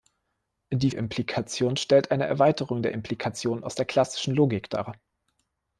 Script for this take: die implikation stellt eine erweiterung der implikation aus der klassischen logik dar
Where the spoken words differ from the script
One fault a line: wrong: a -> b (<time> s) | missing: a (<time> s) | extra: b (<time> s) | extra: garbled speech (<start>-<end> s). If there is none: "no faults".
no faults